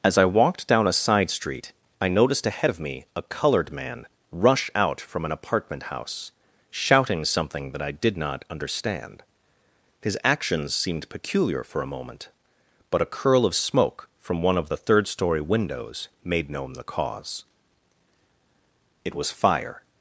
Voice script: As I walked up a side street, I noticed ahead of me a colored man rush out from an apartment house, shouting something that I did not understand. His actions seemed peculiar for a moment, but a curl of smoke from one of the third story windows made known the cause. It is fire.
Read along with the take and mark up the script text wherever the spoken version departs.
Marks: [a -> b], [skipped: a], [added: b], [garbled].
As I walked [up -> down] a side street, I noticed ahead of me a colored man rush out from an apartment house, shouting something that I did not understand. His actions seemed peculiar for a moment, but a curl of smoke from one of the third story windows made known the cause. It [is -> was] fire.